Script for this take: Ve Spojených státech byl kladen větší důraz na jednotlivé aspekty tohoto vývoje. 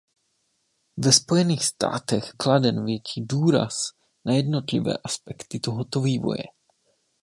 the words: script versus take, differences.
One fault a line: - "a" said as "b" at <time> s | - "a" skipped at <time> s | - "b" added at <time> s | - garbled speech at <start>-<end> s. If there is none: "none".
- "byl" skipped at 2.3 s